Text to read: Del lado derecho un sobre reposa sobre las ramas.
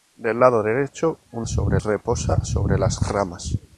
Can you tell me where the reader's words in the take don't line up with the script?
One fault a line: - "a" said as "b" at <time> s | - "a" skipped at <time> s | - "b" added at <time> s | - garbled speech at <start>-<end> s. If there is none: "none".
none